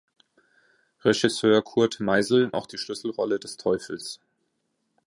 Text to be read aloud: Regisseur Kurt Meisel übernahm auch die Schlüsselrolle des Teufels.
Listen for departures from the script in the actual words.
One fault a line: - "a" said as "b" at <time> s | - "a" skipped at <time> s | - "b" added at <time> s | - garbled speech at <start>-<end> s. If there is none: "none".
- "übernahm" skipped at 2.5 s